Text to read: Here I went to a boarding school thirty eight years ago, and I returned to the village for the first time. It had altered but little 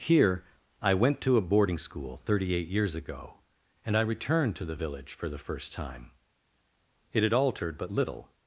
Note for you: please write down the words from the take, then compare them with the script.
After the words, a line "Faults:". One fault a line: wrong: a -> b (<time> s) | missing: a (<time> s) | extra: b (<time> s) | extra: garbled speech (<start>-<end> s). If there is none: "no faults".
Here I went to a boarding school thirty eight years ago, and I returned to the village for the first time. It had altered but little
Faults:
no faults